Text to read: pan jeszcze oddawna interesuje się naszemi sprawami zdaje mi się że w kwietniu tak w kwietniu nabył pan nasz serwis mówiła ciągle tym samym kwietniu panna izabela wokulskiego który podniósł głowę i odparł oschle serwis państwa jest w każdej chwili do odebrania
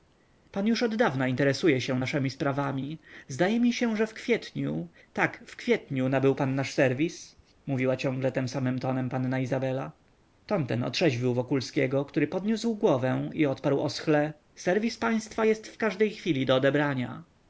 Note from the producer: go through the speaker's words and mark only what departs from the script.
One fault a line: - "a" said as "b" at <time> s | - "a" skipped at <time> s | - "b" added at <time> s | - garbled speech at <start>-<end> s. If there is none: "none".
- "jeszcze" said as "już" at 0.7 s
- "kwietniu" said as "tonem" at 8.8 s
- "ton ten otrzeźwił" added at 10.4 s